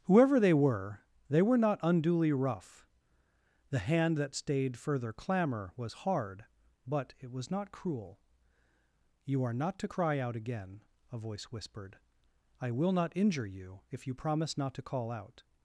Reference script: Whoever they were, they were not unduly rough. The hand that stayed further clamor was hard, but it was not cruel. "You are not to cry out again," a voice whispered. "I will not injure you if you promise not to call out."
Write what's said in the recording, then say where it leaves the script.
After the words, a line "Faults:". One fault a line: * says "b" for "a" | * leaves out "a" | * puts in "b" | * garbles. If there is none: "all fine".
Whoever they were, they were not unduly rough. The hand that stayed further clamor was hard, but it was not cruel. "You are not to cry out again," a voice whispered. "I will not injure you if you promise not to call out."
Faults:
all fine